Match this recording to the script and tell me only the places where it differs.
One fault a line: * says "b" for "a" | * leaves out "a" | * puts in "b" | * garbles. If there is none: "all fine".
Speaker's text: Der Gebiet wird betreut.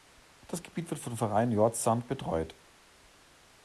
* says "Das" for "Der"
* puts in "vom Verein Jordsand"